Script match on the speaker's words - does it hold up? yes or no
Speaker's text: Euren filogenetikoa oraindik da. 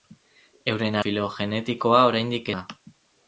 yes